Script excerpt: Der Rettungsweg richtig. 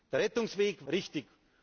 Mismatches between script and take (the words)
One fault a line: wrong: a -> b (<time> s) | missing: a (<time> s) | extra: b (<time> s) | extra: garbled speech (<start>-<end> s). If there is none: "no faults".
no faults